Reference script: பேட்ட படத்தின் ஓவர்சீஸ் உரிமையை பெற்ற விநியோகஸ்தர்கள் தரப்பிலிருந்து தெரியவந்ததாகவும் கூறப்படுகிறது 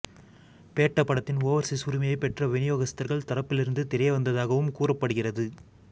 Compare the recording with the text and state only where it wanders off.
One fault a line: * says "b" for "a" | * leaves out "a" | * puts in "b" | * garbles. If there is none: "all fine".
all fine